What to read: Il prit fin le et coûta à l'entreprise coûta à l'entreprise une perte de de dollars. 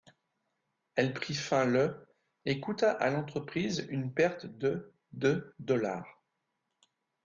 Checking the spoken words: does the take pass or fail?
fail